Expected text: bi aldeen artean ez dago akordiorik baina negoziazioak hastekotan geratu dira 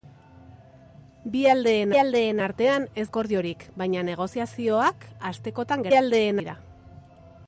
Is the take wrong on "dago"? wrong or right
wrong